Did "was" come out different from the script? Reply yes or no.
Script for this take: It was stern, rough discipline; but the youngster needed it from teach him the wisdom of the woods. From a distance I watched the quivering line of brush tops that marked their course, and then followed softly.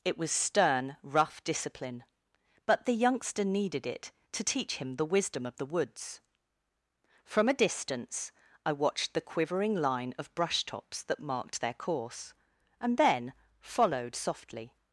no